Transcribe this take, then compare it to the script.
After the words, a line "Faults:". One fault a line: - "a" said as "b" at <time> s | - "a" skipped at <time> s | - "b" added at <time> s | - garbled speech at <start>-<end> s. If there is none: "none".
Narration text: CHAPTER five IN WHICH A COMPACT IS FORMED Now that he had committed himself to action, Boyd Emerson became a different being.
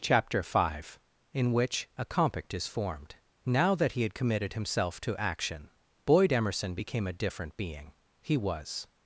CHAPTER five IN WHICH A COMPACT IS FORMED Now that he had committed himself to action, Boyd Emerson became a different being. He was
Faults:
- "He was" added at 8.2 s